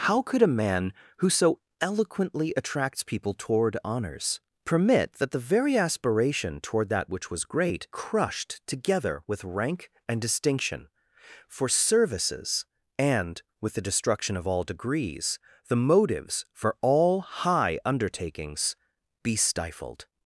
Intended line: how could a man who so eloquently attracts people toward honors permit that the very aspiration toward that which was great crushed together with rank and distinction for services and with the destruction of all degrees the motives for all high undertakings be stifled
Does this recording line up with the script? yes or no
yes